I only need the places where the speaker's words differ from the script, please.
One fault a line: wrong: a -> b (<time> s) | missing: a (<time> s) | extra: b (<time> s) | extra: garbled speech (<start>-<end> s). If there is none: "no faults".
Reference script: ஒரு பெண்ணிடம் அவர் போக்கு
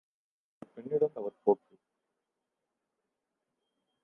no faults